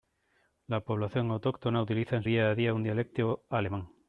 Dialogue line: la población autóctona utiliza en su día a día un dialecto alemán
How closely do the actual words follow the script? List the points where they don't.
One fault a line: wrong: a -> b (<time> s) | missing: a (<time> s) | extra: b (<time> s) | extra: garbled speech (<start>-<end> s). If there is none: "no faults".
missing: su (2.2 s)